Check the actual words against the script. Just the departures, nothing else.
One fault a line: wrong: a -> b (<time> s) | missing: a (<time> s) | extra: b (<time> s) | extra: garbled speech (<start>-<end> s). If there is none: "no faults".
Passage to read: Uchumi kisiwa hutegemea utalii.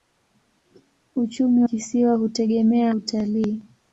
no faults